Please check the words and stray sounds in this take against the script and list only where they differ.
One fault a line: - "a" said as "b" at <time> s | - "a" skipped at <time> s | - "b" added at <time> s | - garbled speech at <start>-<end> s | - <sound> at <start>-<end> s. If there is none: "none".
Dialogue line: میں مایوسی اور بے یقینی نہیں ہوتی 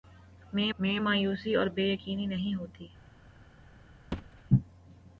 - "میں" added at 0.8 s
- thud at 4.1-4.4 s